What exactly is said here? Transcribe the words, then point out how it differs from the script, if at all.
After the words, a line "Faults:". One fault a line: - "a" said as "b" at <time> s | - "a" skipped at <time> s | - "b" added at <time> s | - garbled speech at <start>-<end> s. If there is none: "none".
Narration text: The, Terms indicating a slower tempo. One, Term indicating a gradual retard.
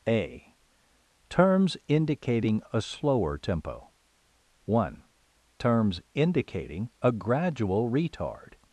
A, Terms indicating a slower tempo. One, Terms indicating a gradual retard.
Faults:
- "The" said as "A" at 0.1 s
- "Term" said as "Terms" at 5.6 s